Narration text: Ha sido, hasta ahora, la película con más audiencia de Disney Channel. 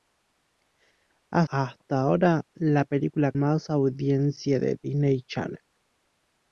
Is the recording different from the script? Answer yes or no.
yes